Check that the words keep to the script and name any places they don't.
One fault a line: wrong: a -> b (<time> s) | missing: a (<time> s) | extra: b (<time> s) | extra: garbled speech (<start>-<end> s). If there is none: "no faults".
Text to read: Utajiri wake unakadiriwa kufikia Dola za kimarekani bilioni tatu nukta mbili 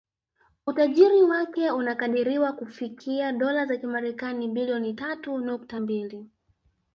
no faults